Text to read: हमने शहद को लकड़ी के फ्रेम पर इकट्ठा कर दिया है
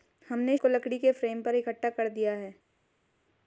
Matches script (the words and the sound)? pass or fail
fail